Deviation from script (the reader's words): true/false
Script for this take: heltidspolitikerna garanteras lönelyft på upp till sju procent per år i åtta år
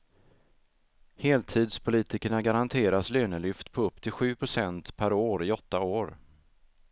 false